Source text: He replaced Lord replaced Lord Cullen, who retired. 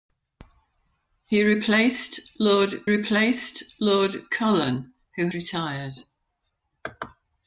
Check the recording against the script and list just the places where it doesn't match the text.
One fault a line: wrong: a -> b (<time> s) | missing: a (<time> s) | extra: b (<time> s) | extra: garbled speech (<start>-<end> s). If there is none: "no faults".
no faults